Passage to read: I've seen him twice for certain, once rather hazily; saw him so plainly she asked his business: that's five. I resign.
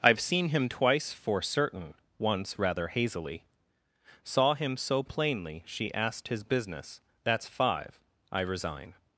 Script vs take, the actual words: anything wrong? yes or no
no